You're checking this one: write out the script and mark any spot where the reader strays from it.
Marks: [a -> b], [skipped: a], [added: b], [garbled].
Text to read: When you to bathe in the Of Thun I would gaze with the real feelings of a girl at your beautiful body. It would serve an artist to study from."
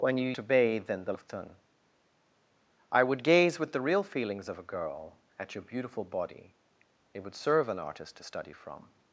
When you to bathe in the Of Thun I would gaze with the real feelings of a girl at your beautiful body. It would serve an artist to study from."